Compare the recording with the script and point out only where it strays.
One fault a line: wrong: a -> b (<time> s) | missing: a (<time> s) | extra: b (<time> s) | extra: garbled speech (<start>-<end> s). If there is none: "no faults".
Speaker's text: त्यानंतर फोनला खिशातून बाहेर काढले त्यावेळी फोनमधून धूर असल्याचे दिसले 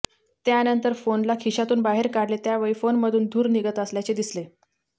extra: निघत (3.5 s)